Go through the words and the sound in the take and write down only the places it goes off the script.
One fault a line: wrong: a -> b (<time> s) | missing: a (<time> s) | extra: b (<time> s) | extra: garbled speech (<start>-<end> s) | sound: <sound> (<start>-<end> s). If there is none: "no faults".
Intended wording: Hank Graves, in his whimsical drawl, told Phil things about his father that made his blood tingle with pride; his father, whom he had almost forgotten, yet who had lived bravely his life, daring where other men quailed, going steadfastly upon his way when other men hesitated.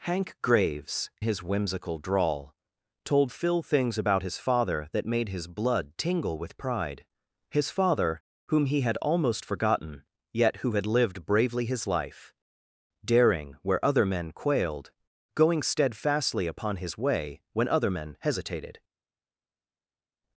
missing: in (1.1 s)